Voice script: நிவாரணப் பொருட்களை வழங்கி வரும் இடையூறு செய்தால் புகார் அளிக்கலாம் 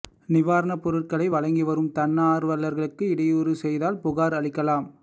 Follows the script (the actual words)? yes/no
no